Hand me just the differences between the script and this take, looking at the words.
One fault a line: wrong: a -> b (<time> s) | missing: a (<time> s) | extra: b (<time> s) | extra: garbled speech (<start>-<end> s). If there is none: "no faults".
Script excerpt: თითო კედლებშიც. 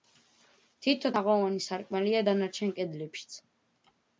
extra: თაღოვანი სარკმელია დანარჩენ (1.2 s)